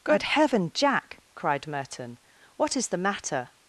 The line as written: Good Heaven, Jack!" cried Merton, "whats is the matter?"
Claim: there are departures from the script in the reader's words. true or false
true